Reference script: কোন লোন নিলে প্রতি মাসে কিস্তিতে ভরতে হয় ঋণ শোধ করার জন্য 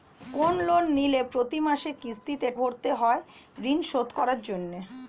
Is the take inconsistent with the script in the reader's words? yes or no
no